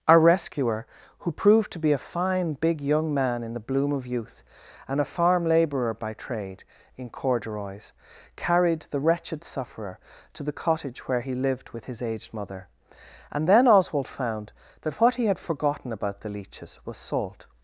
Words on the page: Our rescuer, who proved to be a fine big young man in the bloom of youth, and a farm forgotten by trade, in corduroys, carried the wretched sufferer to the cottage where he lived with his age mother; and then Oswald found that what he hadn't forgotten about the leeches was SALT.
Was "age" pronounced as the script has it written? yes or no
no